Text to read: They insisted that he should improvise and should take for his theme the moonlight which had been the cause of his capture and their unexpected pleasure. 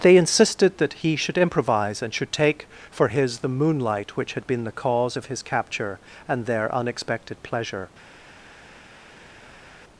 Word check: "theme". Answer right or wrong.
wrong